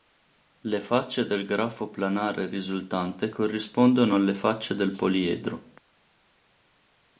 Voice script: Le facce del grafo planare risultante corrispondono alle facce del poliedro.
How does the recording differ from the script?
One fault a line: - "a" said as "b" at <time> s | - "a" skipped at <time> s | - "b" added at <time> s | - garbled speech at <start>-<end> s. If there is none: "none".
none